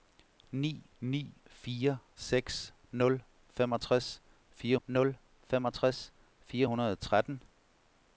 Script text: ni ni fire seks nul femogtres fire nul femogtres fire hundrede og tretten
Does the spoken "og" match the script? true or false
true